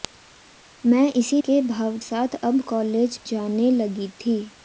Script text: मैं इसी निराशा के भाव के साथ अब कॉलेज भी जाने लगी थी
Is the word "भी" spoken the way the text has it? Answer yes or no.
no